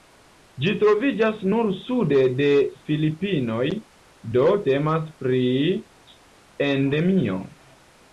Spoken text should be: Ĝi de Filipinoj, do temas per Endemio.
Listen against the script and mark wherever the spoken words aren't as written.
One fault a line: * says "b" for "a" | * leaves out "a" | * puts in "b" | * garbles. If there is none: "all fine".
* puts in "troviĝas nur sude"
* says "pri" for "per"